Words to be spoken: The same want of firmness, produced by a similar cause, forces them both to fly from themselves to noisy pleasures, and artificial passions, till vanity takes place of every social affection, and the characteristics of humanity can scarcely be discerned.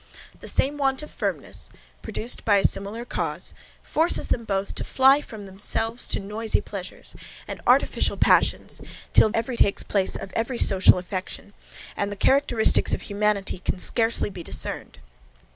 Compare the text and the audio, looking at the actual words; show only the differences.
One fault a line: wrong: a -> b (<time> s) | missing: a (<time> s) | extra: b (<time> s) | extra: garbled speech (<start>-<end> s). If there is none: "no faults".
wrong: vanity -> every (9.3 s)